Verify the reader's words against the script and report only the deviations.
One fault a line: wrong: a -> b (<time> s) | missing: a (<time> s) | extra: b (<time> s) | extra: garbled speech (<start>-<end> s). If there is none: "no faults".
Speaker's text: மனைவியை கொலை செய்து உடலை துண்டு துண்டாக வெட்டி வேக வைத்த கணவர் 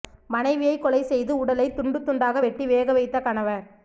no faults